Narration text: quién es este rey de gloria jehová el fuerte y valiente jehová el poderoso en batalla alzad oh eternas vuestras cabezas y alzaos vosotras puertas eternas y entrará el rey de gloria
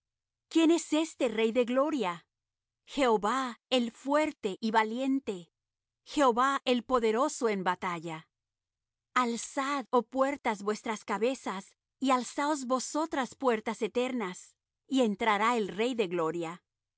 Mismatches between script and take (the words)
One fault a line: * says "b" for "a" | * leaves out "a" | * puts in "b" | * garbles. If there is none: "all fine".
* says "puertas" for "eternas"